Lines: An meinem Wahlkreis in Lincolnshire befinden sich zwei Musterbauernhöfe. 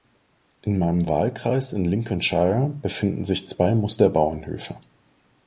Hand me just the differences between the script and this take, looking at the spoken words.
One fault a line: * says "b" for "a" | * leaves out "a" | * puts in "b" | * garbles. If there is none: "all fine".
* says "In" for "An"